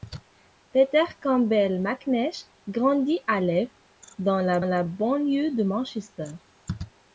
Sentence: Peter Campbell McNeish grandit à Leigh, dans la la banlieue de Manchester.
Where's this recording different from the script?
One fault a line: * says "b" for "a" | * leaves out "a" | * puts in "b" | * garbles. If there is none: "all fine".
all fine